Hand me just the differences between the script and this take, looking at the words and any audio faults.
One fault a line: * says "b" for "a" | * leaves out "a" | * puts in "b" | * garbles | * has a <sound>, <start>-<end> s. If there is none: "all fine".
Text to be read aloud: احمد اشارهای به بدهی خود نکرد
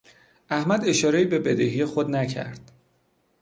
all fine